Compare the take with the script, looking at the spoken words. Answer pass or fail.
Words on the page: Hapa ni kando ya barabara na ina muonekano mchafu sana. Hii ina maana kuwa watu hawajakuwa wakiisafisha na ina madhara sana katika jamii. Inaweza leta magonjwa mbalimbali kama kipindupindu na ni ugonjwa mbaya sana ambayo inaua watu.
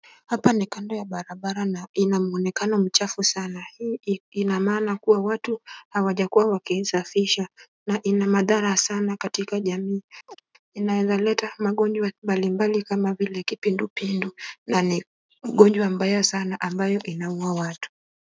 fail